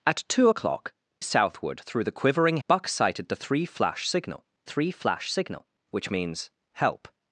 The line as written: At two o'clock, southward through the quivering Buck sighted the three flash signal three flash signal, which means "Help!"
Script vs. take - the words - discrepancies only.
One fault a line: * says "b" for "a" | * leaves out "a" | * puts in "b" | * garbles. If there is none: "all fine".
all fine